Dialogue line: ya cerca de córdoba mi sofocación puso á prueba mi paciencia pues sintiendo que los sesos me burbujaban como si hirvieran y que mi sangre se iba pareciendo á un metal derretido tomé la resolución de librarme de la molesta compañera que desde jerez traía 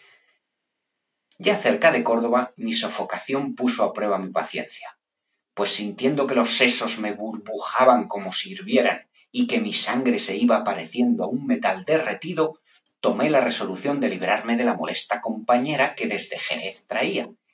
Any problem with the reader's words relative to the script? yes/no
no